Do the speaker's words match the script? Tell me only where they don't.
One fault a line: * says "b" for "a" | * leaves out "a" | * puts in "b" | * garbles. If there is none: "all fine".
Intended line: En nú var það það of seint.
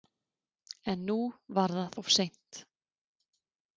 * leaves out "það"